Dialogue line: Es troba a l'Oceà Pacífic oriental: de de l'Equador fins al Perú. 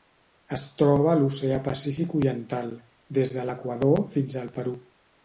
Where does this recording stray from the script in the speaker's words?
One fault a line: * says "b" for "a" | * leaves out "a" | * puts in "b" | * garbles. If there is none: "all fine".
* says "des" for "de"